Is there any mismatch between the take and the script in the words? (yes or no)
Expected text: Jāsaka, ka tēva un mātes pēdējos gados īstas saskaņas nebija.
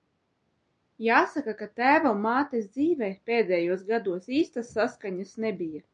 yes